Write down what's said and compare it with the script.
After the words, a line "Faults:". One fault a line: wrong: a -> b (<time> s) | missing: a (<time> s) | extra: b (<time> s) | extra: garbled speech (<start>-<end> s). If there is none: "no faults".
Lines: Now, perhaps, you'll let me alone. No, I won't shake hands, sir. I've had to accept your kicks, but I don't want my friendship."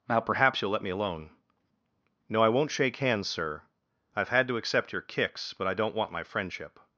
Now, perhaps, you'll let me alone. No, I won't shake hands, sir. I've had to accept your kicks, but I don't want my friendship."
Faults:
no faults